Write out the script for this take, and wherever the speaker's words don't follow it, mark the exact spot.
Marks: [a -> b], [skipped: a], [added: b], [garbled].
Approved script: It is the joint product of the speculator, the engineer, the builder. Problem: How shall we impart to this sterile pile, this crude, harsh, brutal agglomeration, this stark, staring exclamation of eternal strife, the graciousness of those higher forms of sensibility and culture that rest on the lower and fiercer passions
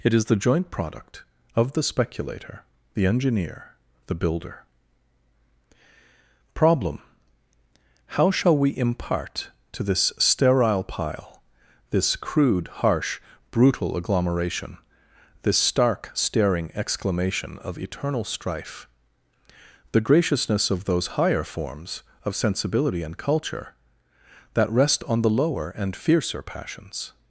It is the joint product of the speculator, the engineer, the builder. Problem: How shall we impart to this sterile pile, this crude, harsh, brutal agglomeration, this stark, staring exclamation of eternal strife, the graciousness of those higher forms of sensibility and culture that rest on the lower and fiercer passions